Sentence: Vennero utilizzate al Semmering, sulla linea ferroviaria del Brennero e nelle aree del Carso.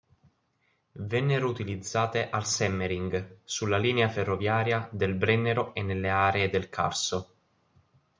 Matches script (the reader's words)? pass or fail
pass